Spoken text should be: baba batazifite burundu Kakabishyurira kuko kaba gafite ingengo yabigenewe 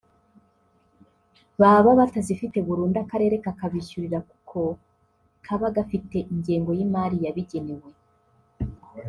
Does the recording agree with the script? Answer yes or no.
no